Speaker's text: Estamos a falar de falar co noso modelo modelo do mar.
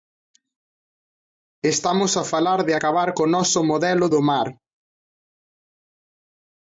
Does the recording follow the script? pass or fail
fail